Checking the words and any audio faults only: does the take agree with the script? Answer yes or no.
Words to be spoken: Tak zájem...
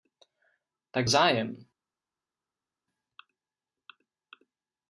yes